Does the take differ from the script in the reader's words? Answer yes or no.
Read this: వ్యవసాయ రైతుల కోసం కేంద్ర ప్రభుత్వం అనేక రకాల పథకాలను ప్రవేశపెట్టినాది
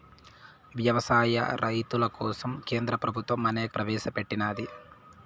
yes